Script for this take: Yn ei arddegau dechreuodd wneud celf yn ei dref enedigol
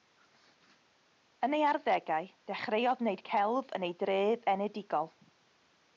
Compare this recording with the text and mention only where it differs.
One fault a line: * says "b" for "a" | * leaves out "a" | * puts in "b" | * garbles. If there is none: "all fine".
all fine